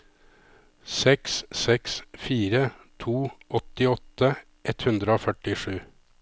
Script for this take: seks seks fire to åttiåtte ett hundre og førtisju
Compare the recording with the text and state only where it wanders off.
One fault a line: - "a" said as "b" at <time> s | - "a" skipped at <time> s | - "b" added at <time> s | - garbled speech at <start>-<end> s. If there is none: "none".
none